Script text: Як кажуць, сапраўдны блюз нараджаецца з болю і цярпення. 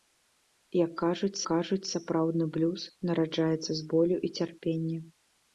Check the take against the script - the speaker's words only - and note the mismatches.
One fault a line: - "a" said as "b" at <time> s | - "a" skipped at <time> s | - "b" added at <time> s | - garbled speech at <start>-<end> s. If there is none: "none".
- "кажуць" added at 1.5 s